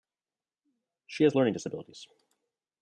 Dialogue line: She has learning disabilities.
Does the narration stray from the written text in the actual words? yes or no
no